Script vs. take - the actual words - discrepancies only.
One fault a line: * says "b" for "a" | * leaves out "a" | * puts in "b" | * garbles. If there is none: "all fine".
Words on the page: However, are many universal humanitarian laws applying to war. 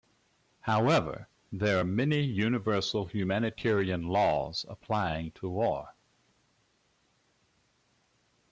* puts in "there"